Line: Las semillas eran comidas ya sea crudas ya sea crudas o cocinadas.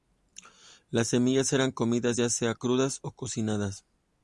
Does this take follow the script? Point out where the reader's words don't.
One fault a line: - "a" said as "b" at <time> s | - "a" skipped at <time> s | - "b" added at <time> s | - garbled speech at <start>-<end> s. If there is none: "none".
- "ya sea crudas" skipped at 3.0 s